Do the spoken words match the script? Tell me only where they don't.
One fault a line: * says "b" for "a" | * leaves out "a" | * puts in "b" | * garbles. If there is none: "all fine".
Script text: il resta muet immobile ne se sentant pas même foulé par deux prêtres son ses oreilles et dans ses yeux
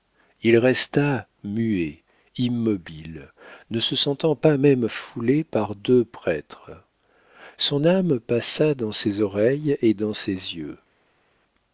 * puts in "âme passa dans"